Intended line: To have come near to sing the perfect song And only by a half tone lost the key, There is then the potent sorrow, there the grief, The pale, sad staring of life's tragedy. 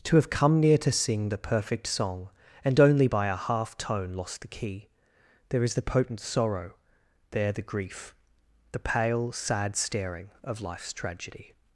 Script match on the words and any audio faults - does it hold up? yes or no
no